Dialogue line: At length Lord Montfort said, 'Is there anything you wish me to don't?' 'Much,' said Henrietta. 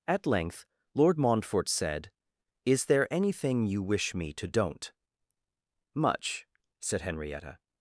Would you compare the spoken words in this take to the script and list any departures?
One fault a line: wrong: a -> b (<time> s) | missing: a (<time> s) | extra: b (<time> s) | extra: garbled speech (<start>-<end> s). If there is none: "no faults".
no faults